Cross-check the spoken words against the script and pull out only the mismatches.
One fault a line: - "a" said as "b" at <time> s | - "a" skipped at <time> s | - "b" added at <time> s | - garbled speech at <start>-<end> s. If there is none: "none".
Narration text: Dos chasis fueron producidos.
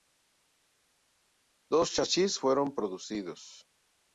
none